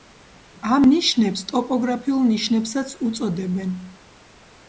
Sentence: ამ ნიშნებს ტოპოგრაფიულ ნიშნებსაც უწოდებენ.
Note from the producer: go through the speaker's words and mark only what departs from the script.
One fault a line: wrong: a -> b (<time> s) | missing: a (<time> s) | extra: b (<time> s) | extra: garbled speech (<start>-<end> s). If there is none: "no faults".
no faults